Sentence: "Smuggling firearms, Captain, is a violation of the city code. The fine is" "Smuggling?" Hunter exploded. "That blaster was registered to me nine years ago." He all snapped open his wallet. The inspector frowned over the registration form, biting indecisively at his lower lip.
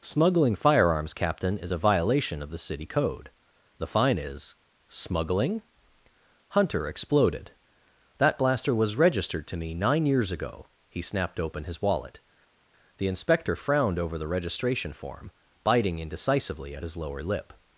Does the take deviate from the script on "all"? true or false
true